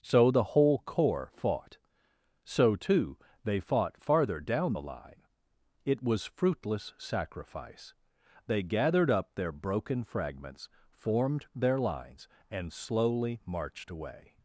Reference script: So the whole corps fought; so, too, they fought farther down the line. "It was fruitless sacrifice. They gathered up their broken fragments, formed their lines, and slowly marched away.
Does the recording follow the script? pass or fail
pass